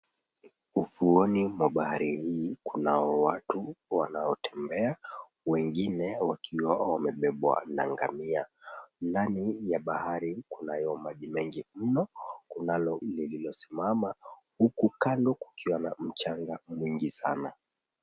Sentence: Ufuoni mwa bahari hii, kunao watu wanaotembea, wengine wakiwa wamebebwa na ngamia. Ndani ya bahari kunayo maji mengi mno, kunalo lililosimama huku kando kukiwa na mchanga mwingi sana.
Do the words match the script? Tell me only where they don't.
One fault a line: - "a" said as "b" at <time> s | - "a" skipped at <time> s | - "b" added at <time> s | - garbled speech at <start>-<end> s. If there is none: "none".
none